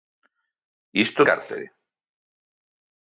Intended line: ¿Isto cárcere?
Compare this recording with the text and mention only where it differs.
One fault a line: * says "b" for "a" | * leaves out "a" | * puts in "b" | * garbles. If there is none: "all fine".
all fine